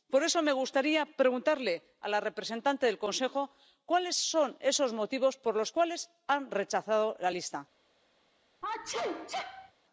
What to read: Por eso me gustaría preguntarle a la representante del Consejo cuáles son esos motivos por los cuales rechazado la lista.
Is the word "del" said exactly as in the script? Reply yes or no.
yes